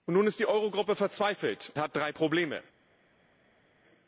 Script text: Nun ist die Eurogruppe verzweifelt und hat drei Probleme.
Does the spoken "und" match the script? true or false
false